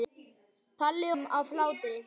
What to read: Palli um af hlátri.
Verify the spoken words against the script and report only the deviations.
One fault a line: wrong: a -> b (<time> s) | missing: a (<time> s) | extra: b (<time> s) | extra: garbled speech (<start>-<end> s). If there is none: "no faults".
no faults